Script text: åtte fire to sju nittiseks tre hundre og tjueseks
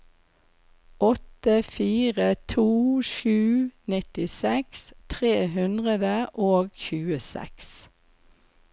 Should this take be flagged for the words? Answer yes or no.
no